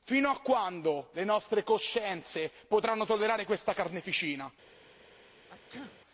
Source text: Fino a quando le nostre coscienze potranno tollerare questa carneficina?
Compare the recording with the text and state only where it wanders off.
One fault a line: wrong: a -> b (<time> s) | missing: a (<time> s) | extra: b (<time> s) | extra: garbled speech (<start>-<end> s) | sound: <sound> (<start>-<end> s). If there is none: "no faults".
sound: sneeze (5.5-6.0 s)